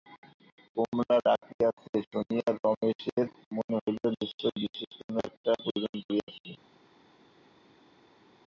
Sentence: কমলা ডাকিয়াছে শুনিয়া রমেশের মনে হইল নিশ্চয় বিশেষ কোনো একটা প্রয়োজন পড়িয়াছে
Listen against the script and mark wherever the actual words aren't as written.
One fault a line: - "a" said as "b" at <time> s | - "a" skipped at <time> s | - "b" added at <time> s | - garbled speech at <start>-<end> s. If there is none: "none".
none